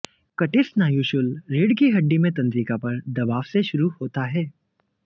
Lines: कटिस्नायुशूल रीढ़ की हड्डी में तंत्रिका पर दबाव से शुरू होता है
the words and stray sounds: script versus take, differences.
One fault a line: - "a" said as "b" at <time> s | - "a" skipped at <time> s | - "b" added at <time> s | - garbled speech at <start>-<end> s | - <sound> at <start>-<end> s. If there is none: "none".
none